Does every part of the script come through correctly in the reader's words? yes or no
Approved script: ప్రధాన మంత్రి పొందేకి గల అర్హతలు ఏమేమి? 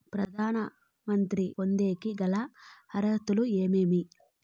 yes